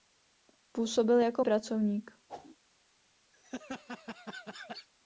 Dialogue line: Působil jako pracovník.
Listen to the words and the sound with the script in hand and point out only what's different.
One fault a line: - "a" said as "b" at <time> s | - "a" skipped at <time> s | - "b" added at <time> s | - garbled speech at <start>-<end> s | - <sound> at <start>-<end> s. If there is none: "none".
- whoosh at 2.3-2.6 s
- laugh at 3.3-4.9 s